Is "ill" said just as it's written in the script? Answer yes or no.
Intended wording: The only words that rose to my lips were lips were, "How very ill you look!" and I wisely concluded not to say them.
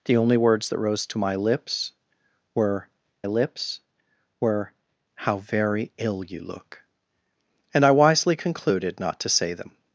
yes